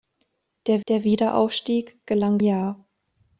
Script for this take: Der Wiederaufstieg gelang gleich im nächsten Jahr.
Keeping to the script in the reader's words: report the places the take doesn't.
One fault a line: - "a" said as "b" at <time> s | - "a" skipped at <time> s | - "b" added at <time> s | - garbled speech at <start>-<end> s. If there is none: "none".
- "der" added at 0.9 s
- "gleich im nächsten" skipped at 2.4 s